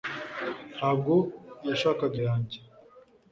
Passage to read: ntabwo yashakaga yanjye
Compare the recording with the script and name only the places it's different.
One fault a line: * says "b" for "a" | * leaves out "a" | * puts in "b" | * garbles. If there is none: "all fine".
all fine